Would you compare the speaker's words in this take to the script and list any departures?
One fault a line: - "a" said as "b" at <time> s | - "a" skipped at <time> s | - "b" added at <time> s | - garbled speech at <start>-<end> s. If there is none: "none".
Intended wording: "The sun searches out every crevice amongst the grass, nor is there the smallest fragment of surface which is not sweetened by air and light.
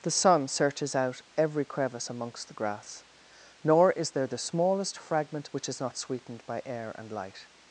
- "of surface" skipped at 5.5 s